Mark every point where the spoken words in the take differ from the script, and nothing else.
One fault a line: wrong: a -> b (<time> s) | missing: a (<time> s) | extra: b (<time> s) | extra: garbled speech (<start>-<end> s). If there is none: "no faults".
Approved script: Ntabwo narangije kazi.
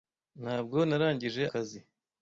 no faults